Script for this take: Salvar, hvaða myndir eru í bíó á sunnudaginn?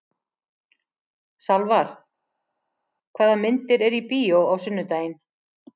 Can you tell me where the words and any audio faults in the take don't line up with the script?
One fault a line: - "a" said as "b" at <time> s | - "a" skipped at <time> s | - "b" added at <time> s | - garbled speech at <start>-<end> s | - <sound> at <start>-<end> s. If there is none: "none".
none